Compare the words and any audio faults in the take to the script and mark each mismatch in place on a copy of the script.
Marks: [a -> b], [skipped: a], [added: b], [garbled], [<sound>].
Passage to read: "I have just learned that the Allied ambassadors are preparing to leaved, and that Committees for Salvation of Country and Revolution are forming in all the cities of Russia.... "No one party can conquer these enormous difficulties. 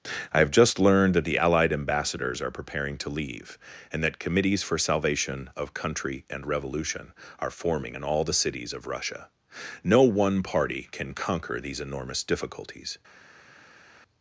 "I have just learned that the Allied ambassadors are preparing to [leaved, -> leave] and that Committees for Salvation of Country and Revolution are forming in all the cities of Russia.... "No one party can conquer these enormous difficulties.